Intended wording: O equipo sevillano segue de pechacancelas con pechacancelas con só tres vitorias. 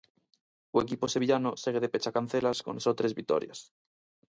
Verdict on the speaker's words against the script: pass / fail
fail